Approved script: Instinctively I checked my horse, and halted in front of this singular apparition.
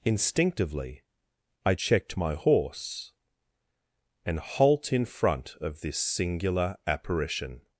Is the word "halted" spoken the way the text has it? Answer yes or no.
no